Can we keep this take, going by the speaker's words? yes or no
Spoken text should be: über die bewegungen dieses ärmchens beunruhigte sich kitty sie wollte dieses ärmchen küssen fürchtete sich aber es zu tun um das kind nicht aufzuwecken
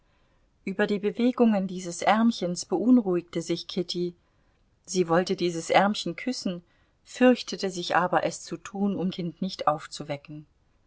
no